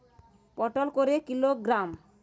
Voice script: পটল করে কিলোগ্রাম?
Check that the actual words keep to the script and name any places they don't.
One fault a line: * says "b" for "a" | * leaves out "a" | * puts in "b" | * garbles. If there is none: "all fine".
all fine